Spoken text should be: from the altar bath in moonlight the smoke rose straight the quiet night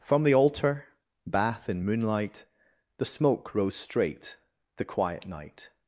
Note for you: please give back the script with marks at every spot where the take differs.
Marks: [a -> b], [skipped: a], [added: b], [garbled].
from the altar bath in moonlight the smoke rose straight the quiet night